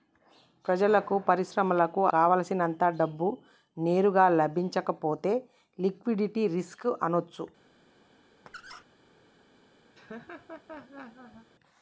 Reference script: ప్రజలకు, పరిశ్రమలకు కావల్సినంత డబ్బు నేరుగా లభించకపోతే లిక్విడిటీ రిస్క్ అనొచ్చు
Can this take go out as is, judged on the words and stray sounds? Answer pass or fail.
fail